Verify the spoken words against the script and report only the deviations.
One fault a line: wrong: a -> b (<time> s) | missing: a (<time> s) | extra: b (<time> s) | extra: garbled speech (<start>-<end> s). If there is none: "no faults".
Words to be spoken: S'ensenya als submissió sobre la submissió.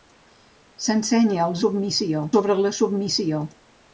no faults